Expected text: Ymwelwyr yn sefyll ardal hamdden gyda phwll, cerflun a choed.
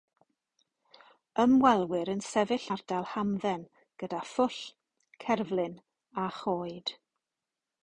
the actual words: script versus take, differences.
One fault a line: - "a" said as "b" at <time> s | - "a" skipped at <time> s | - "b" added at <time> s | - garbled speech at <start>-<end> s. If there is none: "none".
none